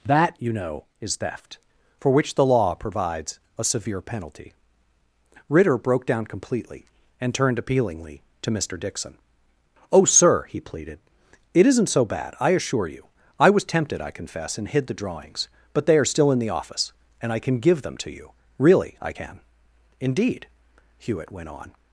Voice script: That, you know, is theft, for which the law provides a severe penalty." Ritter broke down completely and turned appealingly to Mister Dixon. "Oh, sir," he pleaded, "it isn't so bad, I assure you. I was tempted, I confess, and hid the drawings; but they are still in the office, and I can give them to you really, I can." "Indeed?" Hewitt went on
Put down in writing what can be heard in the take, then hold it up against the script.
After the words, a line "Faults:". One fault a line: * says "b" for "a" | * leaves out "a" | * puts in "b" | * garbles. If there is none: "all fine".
That, you know, is theft, for which the law provides a severe penalty." Ritter broke down completely and turned appealingly to Mister Dixon. "Oh, sir," he pleaded, "it isn't so bad, I assure you. I was tempted, I confess, and hid the drawings; but they are still in the office, and I can give them to you really, I can." "Indeed?" Hewitt went on
Faults:
all fine